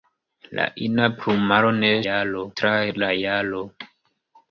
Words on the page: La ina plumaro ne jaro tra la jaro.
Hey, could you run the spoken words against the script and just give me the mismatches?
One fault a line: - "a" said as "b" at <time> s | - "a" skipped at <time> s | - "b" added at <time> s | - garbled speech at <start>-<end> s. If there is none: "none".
none